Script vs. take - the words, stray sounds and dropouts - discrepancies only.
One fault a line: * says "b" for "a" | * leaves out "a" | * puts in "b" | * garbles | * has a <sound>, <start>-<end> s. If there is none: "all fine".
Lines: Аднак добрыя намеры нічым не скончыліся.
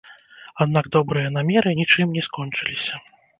all fine